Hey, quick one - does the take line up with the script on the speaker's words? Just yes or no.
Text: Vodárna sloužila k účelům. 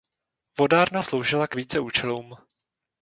no